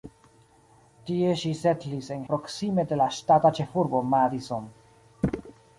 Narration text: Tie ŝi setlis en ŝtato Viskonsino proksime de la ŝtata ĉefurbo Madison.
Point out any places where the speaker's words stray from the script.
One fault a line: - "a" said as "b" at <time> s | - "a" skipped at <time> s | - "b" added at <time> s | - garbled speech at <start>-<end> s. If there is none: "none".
- "ŝtato Viskonsino" skipped at 2.2 s